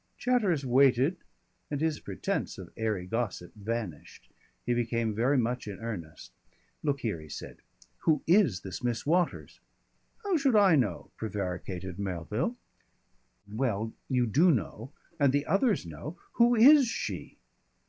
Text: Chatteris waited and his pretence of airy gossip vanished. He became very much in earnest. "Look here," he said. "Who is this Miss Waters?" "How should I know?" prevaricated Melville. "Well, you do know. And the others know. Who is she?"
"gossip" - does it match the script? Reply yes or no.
yes